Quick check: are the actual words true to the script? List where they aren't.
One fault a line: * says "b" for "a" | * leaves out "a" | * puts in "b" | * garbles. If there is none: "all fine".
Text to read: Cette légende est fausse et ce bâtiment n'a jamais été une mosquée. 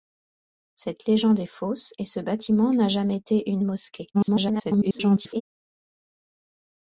* garbles